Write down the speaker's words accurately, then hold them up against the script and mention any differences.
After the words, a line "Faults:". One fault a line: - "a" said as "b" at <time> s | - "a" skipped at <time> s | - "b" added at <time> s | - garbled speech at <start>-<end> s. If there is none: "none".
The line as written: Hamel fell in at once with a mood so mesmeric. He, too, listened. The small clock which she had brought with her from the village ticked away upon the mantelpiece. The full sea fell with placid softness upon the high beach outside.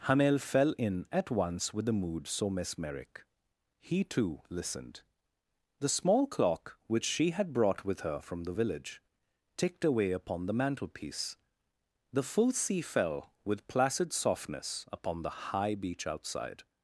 Hamel fell in at once with the mood so mesmeric. He, too, listened. The small clock which she had brought with her from the village ticked away upon the mantelpiece. The full sea fell with placid softness upon the high beach outside.
Faults:
- "a" said as "the" at 1.9 s